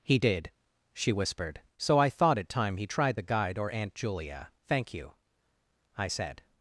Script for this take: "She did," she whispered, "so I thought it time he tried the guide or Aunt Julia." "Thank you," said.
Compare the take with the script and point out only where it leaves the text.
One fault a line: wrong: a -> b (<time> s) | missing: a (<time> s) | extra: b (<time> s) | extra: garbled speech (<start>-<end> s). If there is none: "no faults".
wrong: She -> He (0.0 s)
extra: I (6.0 s)